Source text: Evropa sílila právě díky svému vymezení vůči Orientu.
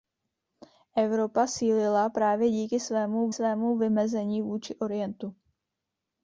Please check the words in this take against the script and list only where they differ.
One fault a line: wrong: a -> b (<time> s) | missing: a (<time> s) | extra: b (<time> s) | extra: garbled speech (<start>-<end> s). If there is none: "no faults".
extra: svému (3.3 s)